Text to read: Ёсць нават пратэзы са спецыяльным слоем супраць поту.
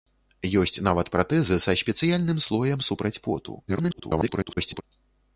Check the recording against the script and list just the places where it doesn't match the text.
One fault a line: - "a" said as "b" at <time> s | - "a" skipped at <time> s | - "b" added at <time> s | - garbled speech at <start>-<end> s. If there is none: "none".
- garbled speech at 3.7-4.8 s